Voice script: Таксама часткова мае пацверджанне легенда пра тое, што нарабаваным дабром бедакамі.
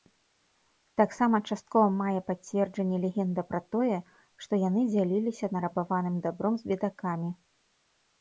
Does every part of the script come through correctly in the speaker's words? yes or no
no